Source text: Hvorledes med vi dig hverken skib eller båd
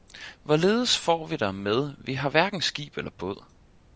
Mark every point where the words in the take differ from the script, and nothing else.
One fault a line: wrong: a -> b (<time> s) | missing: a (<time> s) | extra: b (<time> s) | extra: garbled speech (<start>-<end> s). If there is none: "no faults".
extra: får vi dig (1.0 s)
wrong: dig -> har (2.1 s)